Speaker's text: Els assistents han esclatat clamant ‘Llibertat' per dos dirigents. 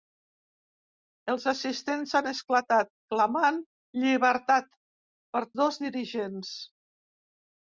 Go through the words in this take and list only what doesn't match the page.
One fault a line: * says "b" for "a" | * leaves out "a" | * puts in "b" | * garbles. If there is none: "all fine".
all fine